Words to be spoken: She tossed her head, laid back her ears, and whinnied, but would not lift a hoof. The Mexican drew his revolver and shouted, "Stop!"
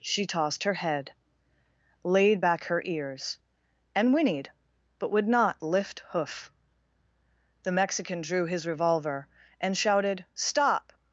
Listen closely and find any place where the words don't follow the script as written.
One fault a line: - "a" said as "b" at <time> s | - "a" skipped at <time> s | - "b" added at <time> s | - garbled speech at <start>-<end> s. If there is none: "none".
- "a" skipped at 6.0 s